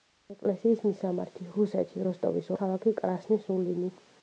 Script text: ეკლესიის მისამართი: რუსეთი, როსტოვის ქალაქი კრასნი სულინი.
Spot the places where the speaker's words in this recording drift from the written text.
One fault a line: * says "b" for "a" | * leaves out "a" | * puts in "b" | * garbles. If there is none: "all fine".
all fine